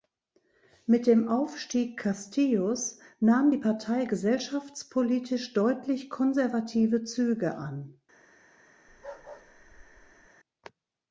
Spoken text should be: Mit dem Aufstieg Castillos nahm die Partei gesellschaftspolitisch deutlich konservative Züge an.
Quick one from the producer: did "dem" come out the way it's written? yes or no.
yes